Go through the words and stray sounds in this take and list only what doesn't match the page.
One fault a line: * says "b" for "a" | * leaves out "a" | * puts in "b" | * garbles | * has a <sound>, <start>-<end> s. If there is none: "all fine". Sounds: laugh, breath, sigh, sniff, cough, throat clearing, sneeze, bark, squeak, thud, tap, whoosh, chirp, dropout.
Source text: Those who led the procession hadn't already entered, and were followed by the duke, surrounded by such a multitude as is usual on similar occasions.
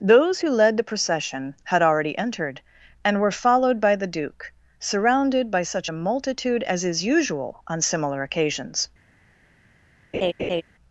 * says "had" for "hadn't"
* has a laugh, 10.1-10.6 s